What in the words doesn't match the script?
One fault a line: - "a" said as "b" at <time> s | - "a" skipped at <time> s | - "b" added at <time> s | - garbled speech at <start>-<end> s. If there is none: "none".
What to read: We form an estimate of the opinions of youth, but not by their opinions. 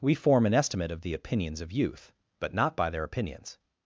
none